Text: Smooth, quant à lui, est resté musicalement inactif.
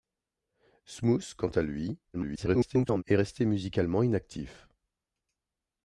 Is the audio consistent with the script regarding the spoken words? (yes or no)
no